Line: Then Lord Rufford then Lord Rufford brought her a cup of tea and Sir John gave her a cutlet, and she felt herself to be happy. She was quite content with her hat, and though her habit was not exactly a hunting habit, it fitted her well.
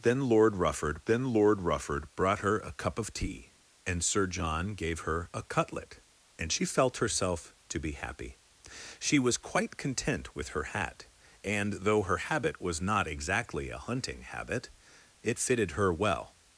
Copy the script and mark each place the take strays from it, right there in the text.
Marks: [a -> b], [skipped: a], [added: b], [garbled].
Then Lord Rufford then Lord Rufford brought her a cup of tea and Sir John gave her a cutlet, and she felt herself to be happy. She was quite content with her hat, and though her habit was not exactly a hunting habit, it fitted her well.